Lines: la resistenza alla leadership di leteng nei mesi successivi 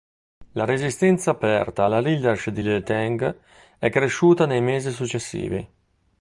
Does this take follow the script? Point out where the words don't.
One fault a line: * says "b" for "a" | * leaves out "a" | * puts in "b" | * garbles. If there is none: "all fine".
* puts in "aperta"
* puts in "è cresciuta"